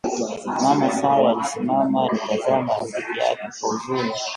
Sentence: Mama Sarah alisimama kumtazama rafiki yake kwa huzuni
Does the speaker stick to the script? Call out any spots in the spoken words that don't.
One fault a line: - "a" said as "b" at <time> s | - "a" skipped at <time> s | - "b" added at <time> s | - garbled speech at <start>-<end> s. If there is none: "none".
none